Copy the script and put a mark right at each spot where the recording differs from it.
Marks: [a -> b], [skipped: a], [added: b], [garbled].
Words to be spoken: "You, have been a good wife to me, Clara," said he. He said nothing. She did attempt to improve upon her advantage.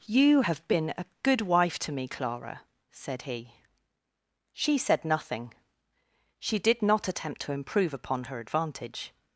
"You, have been a good wife to me, Clara," said he. [He -> She] said nothing. She did [added: not] attempt to improve upon her advantage.